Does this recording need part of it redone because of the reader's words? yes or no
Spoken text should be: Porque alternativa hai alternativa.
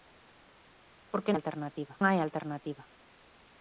no